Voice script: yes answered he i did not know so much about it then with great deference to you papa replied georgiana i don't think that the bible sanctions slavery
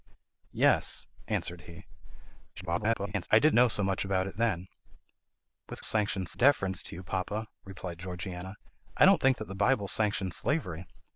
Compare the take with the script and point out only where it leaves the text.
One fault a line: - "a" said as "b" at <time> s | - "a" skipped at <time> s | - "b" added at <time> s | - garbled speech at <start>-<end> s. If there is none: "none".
- garbled speech at 2.6-3.3 s
- "not" skipped at 3.5 s
- "great" said as "sanctions" at 5.8 s